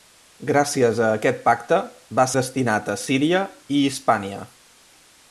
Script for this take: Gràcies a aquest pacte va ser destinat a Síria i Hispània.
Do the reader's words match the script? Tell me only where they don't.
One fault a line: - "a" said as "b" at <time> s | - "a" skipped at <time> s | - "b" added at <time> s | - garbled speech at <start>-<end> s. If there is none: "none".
- "ser" skipped at 2.2 s